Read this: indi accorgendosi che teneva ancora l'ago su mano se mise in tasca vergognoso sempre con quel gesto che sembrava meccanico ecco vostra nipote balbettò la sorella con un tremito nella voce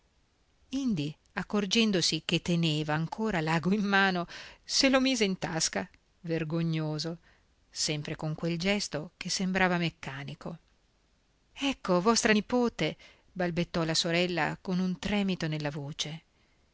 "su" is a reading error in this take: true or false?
true